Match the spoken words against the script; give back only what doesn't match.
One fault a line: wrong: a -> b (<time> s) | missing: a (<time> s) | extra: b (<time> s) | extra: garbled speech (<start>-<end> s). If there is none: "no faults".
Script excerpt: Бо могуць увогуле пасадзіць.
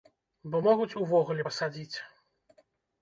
no faults